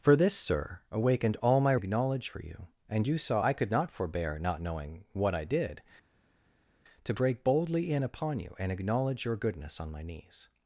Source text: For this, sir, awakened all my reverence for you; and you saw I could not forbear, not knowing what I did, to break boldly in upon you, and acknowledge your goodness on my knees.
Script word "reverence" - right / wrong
wrong